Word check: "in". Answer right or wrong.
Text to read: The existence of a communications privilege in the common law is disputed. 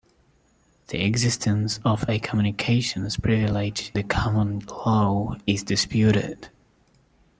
wrong